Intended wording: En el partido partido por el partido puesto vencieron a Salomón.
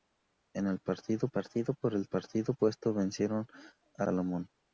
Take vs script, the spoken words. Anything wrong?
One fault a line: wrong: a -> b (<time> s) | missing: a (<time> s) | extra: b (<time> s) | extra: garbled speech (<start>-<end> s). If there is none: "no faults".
no faults